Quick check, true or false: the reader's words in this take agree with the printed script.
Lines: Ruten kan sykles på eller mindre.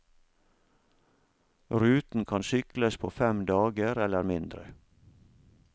false